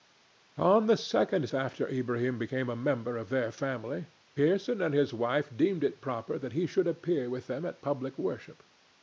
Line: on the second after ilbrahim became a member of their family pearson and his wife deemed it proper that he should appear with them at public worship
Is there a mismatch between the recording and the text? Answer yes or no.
no